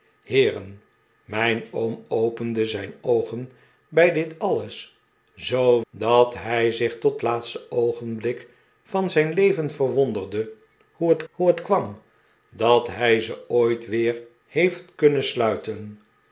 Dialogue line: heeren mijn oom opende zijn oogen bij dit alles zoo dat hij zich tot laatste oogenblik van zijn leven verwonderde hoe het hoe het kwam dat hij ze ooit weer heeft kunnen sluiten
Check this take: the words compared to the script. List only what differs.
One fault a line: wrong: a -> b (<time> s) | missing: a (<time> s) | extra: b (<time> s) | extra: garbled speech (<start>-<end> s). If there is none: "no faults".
no faults